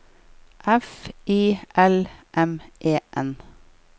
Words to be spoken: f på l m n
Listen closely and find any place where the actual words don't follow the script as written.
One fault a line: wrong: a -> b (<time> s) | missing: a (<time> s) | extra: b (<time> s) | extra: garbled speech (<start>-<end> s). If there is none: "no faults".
wrong: på -> i (1.3 s)
extra: e (2.8 s)